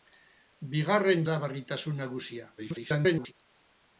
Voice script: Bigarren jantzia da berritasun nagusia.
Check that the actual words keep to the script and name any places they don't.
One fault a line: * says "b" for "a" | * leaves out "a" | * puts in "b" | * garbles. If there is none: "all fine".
* leaves out "jantzia"
* garbles